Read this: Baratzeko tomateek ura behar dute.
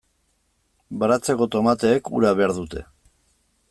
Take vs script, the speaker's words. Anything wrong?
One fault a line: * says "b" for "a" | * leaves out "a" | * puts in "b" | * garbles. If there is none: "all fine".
all fine